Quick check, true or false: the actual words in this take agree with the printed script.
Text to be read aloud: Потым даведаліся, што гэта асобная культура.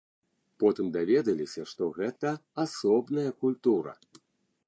true